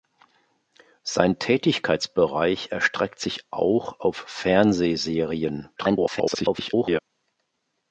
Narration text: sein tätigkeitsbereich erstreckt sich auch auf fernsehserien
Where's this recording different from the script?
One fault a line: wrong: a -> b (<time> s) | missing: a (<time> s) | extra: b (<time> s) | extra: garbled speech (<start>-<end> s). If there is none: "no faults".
extra: garbled speech (5.8-7.0 s)